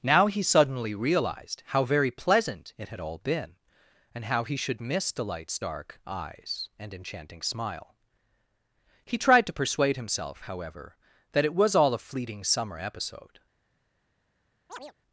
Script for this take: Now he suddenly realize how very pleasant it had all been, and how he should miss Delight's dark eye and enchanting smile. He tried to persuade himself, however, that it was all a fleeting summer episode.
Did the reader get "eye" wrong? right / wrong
wrong